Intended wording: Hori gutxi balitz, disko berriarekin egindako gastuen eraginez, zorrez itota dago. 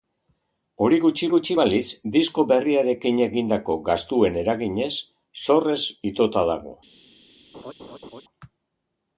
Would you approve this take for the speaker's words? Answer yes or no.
no